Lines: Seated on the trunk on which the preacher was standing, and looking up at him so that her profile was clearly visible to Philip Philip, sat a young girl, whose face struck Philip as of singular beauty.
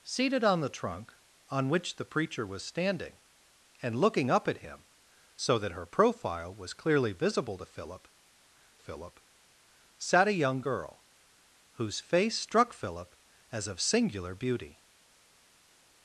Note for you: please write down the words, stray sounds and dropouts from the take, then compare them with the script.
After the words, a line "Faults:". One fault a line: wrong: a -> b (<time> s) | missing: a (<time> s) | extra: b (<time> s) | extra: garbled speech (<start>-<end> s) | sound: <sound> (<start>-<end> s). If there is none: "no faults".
Seated on the trunk on which the preacher was standing, and looking up at him so that her profile was clearly visible to Philip Philip, sat a young girl, whose face struck Philip as of singular beauty.
Faults:
no faults